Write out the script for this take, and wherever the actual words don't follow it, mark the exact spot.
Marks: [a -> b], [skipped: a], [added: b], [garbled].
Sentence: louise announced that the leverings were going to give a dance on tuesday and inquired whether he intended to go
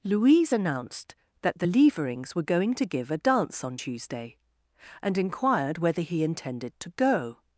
louise announced that the leverings were going to give a dance on tuesday and inquired whether he intended to go